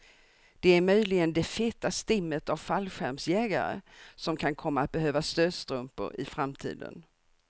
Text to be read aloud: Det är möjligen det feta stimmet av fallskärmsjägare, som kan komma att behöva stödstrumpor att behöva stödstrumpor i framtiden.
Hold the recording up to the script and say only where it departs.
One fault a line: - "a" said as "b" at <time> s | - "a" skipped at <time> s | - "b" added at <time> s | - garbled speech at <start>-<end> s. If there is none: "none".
- "att behöva stödstrumpor" skipped at 6.2 s